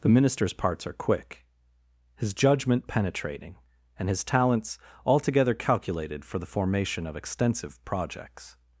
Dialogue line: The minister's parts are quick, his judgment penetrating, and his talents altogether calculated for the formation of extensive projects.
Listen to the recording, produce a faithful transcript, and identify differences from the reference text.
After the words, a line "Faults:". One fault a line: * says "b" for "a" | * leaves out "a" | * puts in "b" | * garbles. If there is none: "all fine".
The minister's parts are quick, his judgment penetrating, and his talents altogether calculated for the formation of extensive projects.
Faults:
all fine